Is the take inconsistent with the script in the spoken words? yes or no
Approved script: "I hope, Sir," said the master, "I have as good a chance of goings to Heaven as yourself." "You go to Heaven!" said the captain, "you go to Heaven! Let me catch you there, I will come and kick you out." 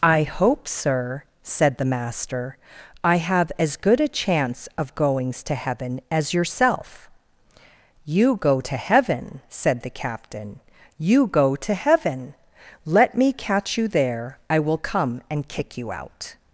no